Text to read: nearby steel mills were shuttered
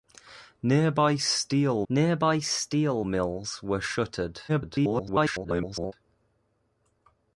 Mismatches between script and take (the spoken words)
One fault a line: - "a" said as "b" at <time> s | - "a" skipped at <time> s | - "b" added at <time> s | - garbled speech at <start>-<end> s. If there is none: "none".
- "nearby steel" added at 1.9 s
- garbled speech at 4.5-5.9 s